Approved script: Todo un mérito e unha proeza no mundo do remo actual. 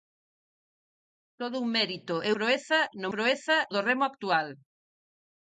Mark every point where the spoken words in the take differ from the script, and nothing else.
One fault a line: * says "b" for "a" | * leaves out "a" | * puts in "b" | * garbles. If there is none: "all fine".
* leaves out "unha"
* says "proeza" for "mundo"